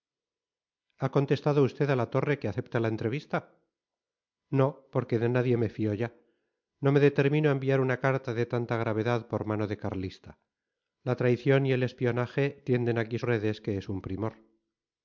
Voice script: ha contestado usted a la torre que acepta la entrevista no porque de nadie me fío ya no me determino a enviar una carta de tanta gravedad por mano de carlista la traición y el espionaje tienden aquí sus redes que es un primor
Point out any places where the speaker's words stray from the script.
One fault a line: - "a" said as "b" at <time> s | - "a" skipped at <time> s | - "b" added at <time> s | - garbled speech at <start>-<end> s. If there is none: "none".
- "sus" skipped at 13.2 s